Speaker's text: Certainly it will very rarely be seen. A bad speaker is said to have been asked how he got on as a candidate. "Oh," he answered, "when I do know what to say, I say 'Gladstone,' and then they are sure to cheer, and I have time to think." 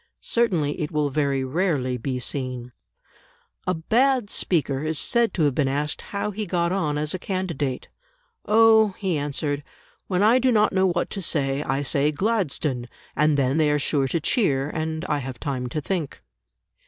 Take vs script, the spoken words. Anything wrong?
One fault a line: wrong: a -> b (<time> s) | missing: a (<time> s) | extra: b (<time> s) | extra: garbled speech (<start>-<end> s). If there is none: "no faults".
extra: not (10.5 s)